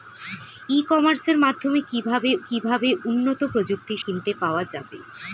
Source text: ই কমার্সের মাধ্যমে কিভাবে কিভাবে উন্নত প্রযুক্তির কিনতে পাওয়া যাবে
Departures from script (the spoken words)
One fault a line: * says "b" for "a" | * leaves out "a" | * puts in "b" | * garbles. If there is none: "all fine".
all fine